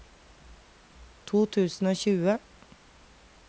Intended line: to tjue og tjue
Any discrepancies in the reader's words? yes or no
yes